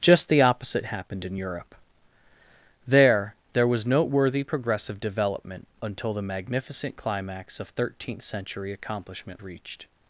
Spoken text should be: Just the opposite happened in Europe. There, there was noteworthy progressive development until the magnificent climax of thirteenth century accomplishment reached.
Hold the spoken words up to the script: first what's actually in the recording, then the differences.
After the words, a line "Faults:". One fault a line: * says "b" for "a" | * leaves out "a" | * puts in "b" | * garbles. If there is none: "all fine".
Just the opposite happened in Europe. There, there was noteworthy progressive development until the magnificent climax of thirteenth century accomplishment reached.
Faults:
all fine